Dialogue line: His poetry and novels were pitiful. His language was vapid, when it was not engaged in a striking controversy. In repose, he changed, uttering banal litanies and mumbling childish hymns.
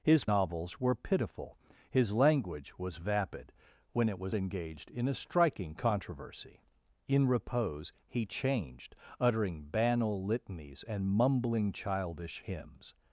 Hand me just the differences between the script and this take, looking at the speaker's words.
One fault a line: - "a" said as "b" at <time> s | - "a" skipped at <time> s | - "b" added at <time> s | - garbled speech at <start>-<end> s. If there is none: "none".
- "poetry and" skipped at 0.2 s
- "not" skipped at 4.3 s